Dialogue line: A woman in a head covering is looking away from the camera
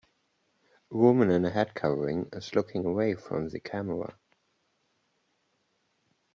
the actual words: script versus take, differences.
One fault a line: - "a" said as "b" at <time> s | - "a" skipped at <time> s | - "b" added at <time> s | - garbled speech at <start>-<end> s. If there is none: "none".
none